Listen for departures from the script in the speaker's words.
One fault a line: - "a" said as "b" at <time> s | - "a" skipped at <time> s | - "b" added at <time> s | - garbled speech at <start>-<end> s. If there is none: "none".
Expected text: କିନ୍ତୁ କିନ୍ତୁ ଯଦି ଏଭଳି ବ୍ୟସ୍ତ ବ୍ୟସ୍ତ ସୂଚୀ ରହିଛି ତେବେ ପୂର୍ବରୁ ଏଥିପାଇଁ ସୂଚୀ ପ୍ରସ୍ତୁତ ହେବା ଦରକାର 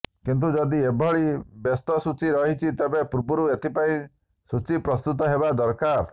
- "କିନ୍ତୁ" skipped at 0.5 s
- "ବ୍ୟସ୍ତ" skipped at 2.0 s